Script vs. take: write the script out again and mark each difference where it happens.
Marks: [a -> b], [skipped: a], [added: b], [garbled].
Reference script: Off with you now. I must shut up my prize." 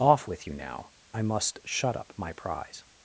Off with you now. I must shut up my prize."